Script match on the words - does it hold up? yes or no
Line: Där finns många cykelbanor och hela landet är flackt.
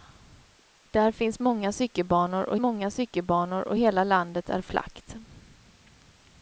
no